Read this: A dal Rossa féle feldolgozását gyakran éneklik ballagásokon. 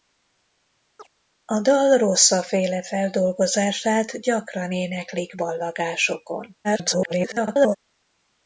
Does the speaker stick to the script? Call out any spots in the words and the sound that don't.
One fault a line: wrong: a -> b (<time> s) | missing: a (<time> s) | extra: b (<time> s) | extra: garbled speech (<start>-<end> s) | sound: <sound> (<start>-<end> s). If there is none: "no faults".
sound: chirp (1.0-1.1 s)
extra: garbled speech (6.6-7.8 s)